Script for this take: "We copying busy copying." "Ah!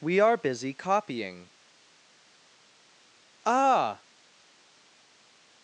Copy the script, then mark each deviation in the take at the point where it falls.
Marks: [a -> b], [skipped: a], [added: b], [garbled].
"We [copying -> are] busy copying." "Ah!